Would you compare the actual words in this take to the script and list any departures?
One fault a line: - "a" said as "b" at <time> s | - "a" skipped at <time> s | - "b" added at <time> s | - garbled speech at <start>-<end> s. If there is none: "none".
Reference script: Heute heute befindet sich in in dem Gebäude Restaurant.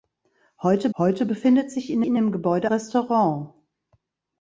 none